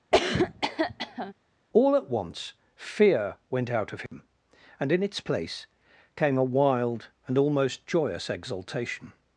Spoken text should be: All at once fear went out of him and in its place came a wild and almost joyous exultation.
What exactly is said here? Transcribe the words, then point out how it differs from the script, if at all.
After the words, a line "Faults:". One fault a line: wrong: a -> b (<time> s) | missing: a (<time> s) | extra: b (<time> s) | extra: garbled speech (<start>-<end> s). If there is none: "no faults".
All at once fear went out of him and in its place came a wild and almost joyous exultation.
Faults:
no faults